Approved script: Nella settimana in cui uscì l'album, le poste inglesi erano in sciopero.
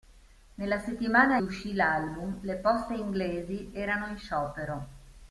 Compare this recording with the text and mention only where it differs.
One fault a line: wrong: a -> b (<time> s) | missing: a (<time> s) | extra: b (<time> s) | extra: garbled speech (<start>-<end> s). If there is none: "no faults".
missing: in cui (1.4 s)